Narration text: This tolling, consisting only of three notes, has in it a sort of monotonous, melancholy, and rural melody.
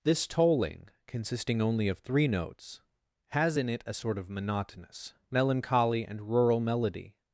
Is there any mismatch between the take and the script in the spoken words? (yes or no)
no